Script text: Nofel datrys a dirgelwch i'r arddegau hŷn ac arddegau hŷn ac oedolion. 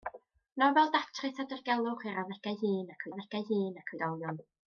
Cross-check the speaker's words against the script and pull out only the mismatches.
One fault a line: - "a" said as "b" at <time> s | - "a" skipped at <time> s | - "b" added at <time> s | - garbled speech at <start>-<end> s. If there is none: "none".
none